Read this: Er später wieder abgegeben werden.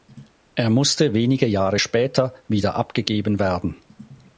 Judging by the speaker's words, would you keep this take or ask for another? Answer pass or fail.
fail